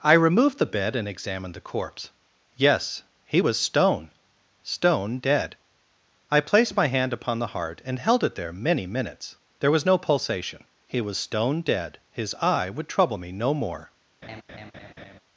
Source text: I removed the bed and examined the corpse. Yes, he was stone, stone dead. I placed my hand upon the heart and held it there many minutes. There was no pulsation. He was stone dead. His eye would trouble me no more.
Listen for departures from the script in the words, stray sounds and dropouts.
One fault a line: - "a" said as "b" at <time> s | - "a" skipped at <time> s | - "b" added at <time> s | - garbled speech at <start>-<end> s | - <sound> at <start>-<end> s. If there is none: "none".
- laugh at 14.2-15.2 s